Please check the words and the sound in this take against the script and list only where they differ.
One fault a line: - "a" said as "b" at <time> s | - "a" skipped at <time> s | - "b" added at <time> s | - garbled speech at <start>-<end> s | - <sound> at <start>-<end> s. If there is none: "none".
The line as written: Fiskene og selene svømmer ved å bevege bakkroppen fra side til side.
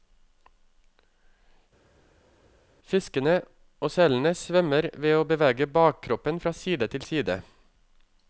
none